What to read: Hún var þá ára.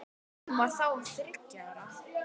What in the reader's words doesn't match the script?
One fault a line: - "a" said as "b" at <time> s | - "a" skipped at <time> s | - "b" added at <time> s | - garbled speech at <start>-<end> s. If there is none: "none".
- "þriggja" added at 1.1 s